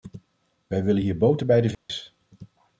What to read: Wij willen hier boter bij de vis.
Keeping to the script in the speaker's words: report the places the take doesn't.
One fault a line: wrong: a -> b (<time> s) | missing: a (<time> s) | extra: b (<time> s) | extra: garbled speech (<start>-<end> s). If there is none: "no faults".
no faults